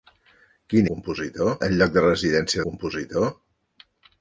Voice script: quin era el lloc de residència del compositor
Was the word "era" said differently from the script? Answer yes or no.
yes